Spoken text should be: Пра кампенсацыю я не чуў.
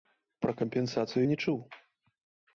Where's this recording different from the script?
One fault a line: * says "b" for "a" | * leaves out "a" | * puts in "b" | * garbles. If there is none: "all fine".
* leaves out "я"